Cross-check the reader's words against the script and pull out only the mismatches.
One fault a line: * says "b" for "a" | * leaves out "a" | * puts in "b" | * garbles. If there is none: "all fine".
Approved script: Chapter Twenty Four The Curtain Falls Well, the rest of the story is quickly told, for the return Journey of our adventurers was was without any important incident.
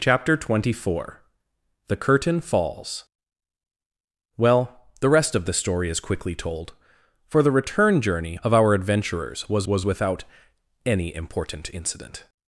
all fine